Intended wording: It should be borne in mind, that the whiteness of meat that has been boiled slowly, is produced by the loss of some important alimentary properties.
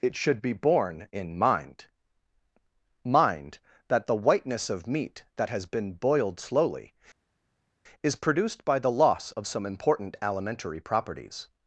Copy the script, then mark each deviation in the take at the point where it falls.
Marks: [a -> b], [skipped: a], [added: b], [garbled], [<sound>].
It should be borne in mind, [added: mind] that the whiteness of meat that has been boiled slowly, is produced by the loss of some important alimentary properties.